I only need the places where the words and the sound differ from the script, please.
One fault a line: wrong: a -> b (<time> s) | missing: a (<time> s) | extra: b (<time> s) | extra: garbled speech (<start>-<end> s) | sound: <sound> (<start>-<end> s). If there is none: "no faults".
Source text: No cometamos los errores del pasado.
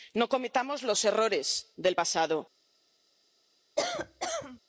sound: cough (3.8-4.6 s)